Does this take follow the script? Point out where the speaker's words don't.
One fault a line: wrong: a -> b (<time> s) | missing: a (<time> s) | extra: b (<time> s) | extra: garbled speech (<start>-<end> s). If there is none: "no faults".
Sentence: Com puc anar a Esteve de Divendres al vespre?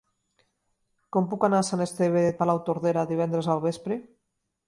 extra: Sant (1.7 s)
extra: Palautordera (2.4 s)